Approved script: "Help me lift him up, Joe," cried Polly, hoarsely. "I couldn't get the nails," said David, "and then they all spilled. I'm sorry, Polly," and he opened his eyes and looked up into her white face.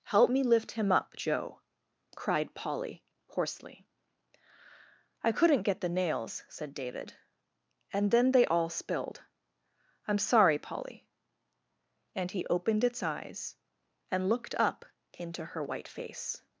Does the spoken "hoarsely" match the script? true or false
true